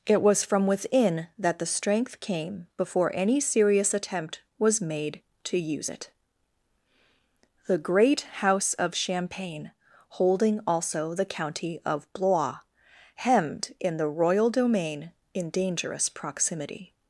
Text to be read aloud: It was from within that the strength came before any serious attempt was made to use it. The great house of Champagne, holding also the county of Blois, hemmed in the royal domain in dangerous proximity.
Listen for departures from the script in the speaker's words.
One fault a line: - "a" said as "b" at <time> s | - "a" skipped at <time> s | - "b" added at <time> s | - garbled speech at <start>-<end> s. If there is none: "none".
none